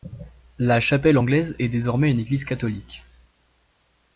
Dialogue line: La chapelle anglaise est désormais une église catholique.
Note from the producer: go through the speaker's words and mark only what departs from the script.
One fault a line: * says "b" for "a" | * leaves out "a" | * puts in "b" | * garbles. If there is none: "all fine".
all fine